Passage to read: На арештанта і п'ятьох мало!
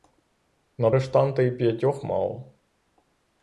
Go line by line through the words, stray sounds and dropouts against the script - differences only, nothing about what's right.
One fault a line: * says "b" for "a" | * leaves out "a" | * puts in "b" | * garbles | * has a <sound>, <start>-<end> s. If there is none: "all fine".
all fine